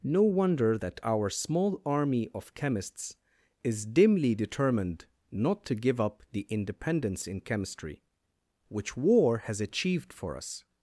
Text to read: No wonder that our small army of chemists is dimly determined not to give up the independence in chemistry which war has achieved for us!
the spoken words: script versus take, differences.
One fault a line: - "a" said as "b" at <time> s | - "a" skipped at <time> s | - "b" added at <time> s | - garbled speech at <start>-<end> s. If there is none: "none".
none